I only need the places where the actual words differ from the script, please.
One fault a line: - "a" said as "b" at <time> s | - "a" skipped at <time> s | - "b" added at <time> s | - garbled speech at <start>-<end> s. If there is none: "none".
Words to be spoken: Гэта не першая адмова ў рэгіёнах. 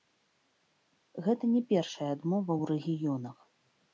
none